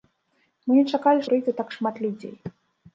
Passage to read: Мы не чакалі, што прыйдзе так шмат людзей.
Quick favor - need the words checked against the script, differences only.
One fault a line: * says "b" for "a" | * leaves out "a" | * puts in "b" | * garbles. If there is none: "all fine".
* leaves out "што"